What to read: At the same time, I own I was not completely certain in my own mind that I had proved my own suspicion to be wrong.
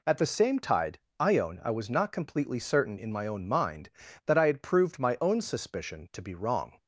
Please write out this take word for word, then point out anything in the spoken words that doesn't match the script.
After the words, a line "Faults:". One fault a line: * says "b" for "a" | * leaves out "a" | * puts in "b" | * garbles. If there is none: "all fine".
At the same tide, I own I was not completely certain in my own mind that I had proved my own suspicion to be wrong.
Faults:
* says "tide" for "time"